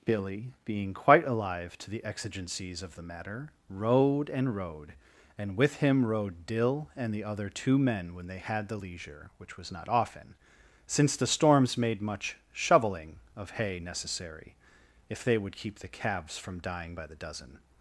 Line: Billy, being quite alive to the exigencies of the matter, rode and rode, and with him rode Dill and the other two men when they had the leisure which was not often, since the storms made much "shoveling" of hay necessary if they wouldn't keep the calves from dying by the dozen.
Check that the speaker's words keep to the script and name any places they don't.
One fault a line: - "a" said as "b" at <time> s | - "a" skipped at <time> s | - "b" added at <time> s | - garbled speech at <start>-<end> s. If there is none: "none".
- "wouldn't" said as "would" at 15.4 s